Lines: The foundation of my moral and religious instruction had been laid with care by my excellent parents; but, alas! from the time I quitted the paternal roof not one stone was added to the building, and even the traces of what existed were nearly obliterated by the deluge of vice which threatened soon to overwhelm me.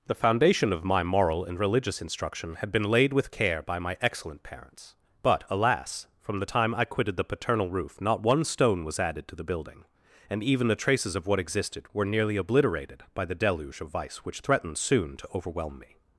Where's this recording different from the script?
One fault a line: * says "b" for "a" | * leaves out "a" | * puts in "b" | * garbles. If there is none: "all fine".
all fine